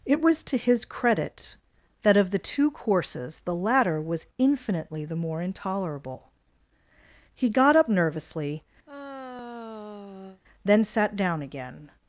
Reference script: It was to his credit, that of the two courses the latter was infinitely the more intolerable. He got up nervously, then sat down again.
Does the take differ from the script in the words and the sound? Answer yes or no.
yes